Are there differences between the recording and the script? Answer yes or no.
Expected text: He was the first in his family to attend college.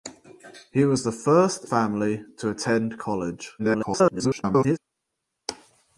yes